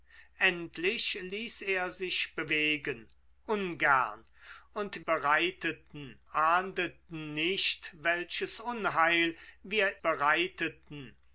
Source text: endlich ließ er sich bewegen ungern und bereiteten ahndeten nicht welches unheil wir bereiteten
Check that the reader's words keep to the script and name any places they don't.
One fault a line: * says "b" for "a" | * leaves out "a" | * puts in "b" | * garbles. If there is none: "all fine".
all fine